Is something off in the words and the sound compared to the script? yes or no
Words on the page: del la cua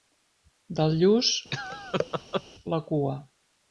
yes